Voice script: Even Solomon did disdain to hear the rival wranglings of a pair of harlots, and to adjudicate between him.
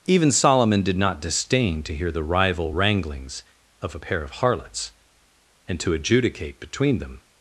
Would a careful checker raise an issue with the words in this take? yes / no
yes